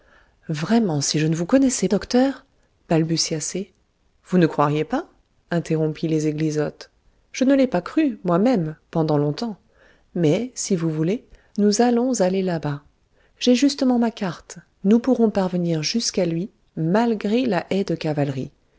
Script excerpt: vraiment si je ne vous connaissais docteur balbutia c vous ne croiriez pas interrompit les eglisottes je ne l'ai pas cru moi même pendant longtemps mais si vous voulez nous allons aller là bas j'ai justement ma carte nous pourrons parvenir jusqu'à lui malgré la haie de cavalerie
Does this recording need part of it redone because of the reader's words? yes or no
no